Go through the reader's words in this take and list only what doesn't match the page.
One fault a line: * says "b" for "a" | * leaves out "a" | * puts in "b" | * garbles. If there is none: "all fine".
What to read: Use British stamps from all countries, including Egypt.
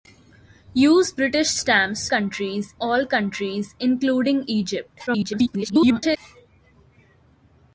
* says "countries" for "from"
* garbles